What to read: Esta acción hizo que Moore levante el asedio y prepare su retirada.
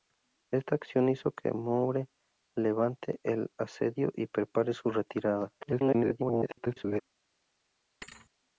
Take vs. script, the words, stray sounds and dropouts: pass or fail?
fail